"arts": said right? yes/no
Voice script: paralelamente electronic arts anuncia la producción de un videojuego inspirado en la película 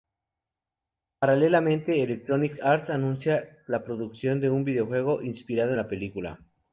yes